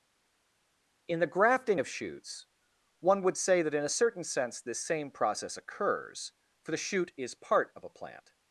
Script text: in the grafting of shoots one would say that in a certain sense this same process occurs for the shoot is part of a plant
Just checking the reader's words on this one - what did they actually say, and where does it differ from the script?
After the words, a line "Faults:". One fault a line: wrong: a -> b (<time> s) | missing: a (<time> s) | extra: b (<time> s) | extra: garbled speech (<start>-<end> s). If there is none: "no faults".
in the grafting of shoots one would say that in a certain sense this same process occurs for the shoot is part of a plant
Faults:
no faults